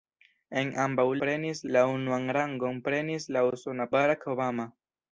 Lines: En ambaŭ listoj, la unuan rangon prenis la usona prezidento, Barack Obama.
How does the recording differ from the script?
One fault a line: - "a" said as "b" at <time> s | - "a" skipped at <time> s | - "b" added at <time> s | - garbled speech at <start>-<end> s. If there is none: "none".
- "listoj" said as "prenis" at 1.2 s
- "prezidento" skipped at 3.9 s